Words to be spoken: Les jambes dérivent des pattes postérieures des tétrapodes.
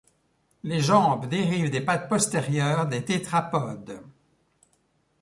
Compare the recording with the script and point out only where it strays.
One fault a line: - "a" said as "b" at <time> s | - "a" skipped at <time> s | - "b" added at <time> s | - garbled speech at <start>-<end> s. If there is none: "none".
none